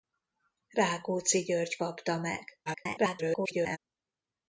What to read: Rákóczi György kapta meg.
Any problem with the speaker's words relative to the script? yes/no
yes